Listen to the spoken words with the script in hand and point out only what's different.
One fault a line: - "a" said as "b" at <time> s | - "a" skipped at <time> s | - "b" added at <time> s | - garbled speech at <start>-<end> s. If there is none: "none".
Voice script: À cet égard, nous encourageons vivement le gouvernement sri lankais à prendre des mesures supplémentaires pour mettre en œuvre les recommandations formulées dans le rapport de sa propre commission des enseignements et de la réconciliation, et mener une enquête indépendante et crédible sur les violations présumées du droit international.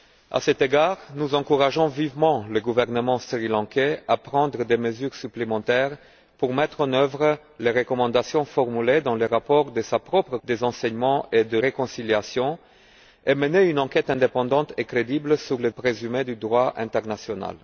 - "commission" skipped at 10.4 s
- "la" skipped at 11.6 s
- "violations" skipped at 15.7 s